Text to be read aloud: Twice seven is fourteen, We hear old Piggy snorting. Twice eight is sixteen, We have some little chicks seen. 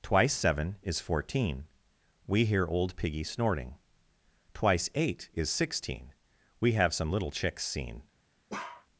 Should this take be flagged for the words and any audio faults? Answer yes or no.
yes